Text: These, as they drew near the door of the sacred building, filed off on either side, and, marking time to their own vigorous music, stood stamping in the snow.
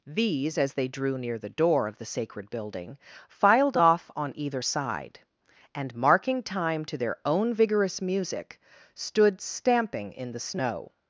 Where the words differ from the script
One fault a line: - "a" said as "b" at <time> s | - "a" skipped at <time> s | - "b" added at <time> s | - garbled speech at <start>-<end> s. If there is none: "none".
none